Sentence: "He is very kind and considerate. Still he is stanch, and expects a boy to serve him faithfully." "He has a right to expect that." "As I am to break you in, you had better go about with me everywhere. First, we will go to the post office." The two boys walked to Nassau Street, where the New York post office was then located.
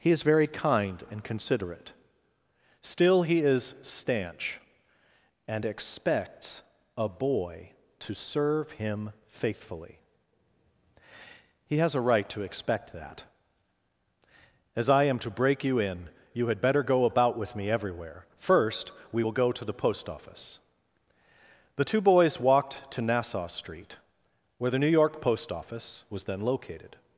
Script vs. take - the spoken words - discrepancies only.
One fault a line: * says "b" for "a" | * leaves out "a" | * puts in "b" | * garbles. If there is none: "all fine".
all fine